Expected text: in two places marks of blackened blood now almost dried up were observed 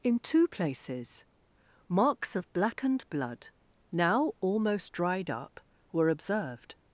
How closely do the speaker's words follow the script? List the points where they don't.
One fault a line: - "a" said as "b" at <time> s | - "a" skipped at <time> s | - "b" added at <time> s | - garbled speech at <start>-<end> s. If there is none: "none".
none